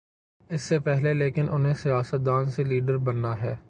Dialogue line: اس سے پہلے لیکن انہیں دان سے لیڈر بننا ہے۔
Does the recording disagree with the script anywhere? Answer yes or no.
yes